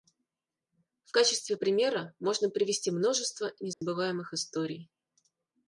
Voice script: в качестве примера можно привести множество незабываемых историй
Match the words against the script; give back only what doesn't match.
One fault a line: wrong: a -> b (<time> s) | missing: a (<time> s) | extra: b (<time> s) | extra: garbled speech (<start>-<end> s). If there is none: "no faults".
no faults